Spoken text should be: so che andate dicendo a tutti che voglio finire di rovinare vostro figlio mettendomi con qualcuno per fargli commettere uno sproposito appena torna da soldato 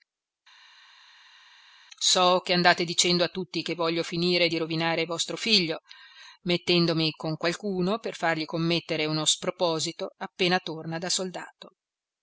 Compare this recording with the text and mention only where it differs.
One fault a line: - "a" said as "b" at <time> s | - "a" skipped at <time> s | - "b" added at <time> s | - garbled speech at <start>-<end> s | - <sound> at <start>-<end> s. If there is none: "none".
none